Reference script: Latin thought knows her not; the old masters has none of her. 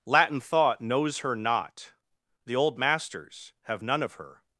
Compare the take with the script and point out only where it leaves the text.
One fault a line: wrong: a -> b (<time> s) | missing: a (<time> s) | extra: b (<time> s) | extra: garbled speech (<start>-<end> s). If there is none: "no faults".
wrong: has -> have (3.6 s)